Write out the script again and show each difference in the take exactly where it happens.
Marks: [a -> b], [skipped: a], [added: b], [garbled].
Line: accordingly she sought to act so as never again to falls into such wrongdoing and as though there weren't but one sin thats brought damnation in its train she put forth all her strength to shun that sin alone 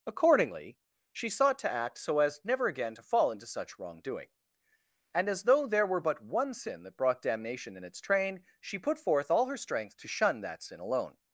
accordingly she sought to act so as never again to [falls -> fall] into such wrongdoing and as though there [weren't -> were] but one sin [thats -> that] brought damnation in its train she put forth all her strength to shun that sin alone